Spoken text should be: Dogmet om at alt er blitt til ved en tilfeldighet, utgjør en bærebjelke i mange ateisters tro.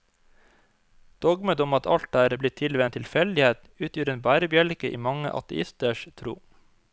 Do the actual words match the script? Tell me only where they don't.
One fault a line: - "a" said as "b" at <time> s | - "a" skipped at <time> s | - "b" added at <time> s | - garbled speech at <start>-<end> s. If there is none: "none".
none